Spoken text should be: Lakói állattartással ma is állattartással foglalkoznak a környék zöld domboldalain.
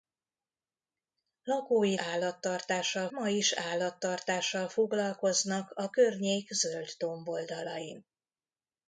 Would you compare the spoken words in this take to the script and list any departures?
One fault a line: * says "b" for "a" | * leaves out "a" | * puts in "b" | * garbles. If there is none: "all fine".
all fine